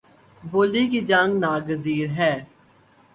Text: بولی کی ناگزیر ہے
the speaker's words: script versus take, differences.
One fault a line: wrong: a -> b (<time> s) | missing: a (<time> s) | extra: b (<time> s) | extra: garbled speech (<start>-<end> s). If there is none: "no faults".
extra: جنگ (1.1 s)